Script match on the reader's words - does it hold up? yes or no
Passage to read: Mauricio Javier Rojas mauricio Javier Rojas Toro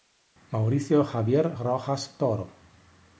no